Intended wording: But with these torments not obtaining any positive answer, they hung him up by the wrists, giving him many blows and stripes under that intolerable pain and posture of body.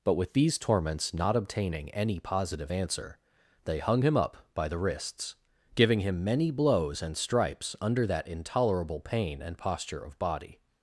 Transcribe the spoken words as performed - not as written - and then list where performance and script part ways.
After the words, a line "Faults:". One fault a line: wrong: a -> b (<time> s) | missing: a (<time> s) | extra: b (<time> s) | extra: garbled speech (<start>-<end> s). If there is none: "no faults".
But with these torments not obtaining any positive answer, they hung him up by the wrists, giving him many blows and stripes under that intolerable pain and posture of body.
Faults:
no faults